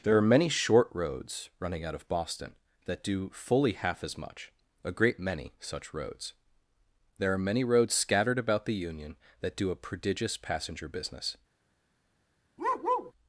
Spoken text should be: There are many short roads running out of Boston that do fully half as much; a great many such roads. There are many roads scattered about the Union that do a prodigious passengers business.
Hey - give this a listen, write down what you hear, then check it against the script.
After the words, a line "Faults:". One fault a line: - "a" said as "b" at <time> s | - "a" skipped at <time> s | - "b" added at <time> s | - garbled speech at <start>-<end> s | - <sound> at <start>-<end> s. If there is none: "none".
There are many short roads running out of Boston that do fully half as much; a great many such roads. There are many roads scattered about the Union that do a prodigious passenger business.
Faults:
- "passengers" said as "passenger" at 10.4 s
- bark at 12.6-13.1 s